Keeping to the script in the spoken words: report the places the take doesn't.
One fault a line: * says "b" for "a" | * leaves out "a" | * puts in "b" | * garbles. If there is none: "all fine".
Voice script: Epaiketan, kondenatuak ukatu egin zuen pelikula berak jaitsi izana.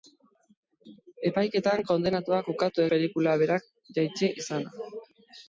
* leaves out "egin zuen"